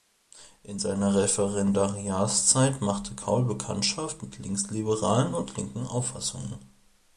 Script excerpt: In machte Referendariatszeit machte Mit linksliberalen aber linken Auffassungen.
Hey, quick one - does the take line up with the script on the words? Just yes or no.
no